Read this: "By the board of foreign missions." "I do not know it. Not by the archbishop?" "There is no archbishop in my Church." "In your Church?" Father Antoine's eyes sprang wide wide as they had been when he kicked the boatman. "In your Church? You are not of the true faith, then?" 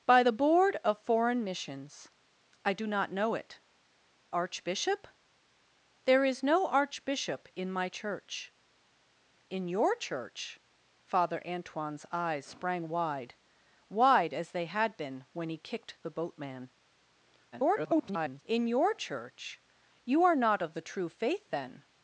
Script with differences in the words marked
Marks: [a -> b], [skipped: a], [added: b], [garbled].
"By the board of foreign missions." "I do not know it. [skipped: Not by the] archbishop?" "There is no archbishop in my Church." "In your Church?" Father Antoine's eyes sprang wide wide as they had been when he kicked the boatman. [garbled] "In your Church? You are not of the true faith, then?"